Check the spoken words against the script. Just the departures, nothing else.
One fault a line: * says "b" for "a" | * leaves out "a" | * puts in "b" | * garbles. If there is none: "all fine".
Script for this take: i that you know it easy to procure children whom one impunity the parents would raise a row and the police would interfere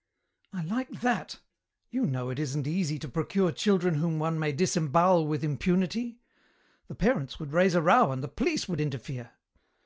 * puts in "like"
* puts in "isn't"
* puts in "may disembowel with"